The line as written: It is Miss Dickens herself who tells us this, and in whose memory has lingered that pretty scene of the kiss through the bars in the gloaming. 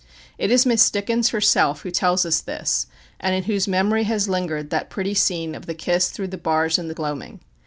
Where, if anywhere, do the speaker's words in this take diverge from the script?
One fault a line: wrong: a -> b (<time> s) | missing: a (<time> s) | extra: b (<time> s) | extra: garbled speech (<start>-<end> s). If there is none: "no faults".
no faults